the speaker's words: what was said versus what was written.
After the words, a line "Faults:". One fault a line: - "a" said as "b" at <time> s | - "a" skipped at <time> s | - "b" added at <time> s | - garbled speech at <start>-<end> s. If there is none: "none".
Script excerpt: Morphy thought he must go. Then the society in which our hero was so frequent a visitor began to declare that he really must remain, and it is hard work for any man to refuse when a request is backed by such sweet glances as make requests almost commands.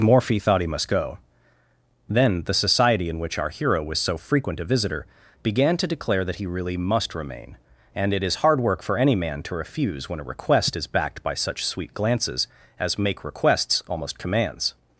Morphy thought he must go. Then the society in which our hero was so frequent a visitor began to declare that he really must remain, and it is hard work for any man to refuse when a request is backed by such sweet glances as make requests almost commands.
Faults:
none